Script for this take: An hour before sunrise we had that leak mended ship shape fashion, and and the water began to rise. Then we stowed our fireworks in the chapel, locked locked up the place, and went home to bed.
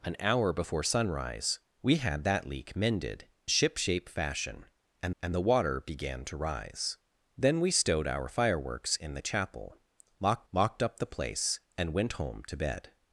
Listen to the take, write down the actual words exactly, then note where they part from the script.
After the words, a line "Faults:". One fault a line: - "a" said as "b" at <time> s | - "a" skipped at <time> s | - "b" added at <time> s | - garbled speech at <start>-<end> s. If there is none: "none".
An hour before sunrise we had that leak mended ship shape fashion, and and the water began to rise. Then we stowed our fireworks in the chapel, locked locked up the place, and went home to bed.
Faults:
none